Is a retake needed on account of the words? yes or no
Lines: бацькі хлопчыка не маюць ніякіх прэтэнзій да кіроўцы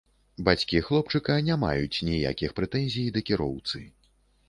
no